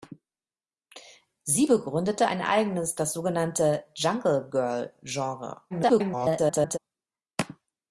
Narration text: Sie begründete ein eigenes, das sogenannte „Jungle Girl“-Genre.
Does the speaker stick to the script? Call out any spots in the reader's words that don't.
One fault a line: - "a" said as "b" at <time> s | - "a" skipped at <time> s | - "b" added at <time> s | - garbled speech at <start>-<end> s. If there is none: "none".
- garbled speech at 5.7-6.8 s